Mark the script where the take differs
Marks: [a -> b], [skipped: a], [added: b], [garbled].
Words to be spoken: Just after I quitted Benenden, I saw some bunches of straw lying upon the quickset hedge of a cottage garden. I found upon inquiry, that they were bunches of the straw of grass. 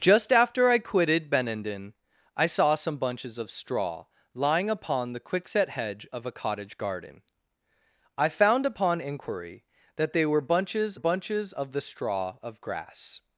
Just after I quitted Benenden, I saw some bunches of straw lying upon the quickset hedge of a cottage garden. I found upon inquiry, that they were bunches [added: bunches] of the straw of grass.